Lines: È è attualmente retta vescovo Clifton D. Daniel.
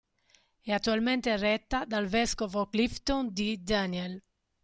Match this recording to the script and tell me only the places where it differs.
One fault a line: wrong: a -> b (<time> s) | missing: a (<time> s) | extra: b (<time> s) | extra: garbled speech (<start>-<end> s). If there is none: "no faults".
missing: è (0.7 s)
extra: dal (1.9 s)